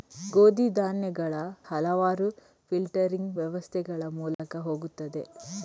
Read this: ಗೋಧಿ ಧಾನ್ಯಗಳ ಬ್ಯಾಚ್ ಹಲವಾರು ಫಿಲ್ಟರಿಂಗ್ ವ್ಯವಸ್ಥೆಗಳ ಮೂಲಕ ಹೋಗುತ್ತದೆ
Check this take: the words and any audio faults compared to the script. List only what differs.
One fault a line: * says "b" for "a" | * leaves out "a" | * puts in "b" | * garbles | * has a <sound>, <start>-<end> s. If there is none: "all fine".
* leaves out "ಬ್ಯಾಚ್"
* has a dropout, 4.3-4.4 s